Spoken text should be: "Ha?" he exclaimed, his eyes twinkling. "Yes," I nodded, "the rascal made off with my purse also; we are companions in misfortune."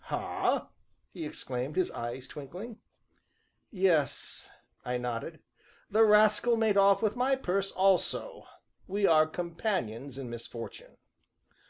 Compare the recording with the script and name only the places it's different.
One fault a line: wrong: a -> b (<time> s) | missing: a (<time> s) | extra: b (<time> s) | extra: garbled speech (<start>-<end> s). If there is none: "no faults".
no faults